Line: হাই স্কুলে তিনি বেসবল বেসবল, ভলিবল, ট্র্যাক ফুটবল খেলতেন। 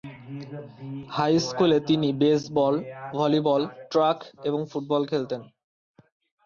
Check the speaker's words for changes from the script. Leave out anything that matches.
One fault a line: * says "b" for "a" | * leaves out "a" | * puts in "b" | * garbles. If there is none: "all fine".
* leaves out "বেসবল"
* puts in "এবং"